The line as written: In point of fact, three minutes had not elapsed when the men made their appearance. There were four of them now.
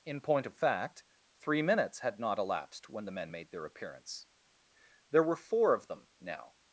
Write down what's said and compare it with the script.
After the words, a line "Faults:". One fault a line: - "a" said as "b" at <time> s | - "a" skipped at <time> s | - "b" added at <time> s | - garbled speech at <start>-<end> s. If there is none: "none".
In point of fact, three minutes had not elapsed when the men made their appearance. There were four of them now.
Faults:
none